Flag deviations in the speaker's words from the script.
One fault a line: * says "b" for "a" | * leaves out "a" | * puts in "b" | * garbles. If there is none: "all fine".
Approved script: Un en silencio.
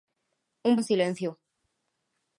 all fine